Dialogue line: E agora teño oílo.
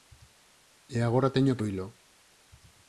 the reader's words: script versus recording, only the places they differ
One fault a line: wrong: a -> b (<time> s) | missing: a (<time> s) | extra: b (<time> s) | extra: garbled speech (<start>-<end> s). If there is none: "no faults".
no faults